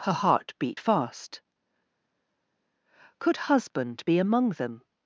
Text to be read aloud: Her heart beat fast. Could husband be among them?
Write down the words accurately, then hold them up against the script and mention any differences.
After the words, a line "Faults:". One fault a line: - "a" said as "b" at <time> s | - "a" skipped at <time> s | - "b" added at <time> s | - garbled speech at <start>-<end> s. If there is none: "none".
Her heart beat fast. Could husband be among them?
Faults:
none